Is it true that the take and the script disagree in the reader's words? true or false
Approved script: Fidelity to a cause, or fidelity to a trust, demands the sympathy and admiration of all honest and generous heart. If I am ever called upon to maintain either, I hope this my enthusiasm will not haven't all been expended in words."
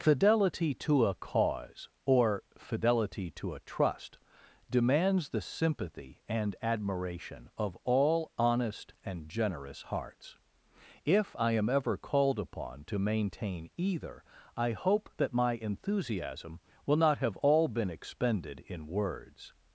true